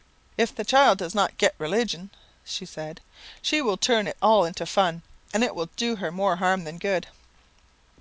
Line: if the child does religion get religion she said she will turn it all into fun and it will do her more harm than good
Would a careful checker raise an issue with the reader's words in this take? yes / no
yes